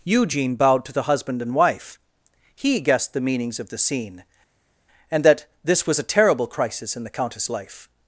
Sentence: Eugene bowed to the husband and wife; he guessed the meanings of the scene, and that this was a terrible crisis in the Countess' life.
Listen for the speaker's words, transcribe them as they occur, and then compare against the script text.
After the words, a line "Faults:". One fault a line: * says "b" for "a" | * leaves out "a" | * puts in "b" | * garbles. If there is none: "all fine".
Eugene bowed to the husband and wife; he guessed the meanings of the scene, and that this was a terrible crisis in the Countess' life.
Faults:
all fine